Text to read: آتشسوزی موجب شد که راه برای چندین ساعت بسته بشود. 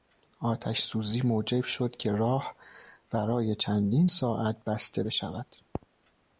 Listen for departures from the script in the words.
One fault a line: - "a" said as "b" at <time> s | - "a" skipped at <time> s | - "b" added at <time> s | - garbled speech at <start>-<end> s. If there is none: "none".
none